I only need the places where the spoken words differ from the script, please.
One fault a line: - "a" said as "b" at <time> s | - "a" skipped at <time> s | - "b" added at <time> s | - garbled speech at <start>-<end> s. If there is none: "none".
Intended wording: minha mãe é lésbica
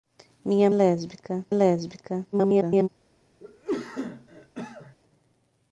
- "mãe" said as "lésbica" at 0.7 s
- garbled speech at 2.3-2.9 s